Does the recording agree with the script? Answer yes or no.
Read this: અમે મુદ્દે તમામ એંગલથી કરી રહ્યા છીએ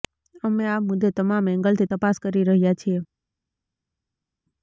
no